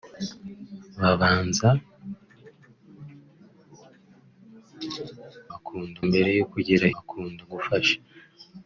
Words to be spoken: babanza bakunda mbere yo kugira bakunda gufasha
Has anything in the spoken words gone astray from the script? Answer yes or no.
no